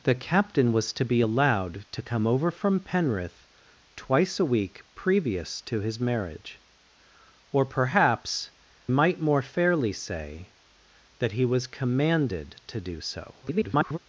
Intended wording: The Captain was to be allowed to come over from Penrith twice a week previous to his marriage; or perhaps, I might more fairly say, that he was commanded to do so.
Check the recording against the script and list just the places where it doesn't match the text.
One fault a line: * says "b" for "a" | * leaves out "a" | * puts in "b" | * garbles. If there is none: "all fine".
* leaves out "I"
* garbles